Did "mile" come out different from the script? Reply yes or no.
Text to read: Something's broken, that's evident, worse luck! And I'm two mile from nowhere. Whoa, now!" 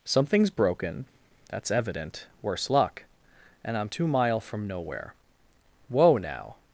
no